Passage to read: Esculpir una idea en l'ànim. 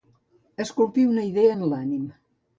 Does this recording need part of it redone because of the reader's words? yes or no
no